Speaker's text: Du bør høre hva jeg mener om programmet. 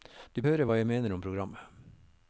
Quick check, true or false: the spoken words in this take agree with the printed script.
false